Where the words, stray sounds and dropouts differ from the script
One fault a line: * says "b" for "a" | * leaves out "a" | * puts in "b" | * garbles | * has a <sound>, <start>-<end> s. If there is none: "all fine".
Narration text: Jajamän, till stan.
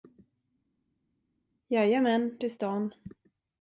all fine